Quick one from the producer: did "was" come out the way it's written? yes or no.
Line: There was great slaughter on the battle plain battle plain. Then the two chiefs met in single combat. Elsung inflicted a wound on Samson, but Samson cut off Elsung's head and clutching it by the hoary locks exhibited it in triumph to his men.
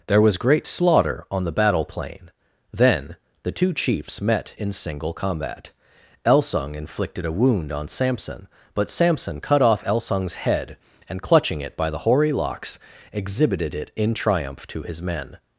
yes